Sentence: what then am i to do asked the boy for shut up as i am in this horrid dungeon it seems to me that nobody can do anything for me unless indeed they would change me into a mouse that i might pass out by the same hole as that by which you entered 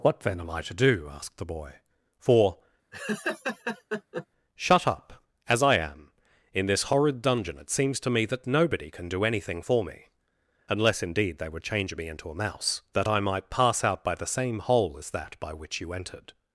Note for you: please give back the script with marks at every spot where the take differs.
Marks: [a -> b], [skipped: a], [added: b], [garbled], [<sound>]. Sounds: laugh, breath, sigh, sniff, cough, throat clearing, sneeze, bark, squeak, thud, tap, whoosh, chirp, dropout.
what then am i to do asked the boy for [laugh] shut up as i am in this horrid dungeon it seems to me that nobody can do anything for me unless indeed they would change me into a mouse that i might pass out by the same hole as that by which you entered